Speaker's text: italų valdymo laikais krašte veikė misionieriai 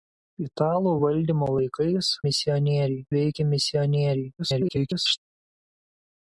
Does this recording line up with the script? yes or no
no